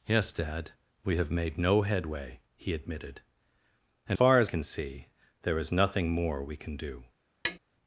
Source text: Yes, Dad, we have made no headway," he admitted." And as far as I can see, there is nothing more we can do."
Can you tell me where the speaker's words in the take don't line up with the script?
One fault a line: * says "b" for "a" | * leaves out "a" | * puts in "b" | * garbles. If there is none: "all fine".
* leaves out "as"
* leaves out "I"